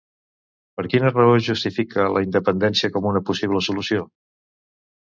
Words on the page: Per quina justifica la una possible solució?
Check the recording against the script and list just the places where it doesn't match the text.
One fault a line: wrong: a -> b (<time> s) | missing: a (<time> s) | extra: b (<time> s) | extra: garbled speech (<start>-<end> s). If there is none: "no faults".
extra: raó (1.1 s)
extra: independència com (2.3 s)